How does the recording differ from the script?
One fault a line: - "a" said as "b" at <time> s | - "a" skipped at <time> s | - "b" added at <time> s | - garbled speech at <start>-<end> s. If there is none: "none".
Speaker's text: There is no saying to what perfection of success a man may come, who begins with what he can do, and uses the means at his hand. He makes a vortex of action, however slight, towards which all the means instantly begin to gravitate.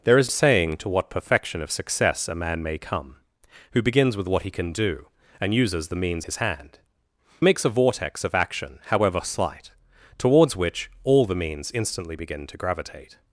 - "no" skipped at 0.3 s
- "at" skipped at 6.2 s
- "He" skipped at 6.8 s